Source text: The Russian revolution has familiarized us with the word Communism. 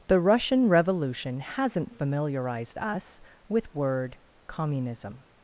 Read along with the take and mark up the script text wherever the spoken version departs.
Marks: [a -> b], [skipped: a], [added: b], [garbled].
The Russian revolution [has -> hasn't] familiarized us with [skipped: the] word Communism.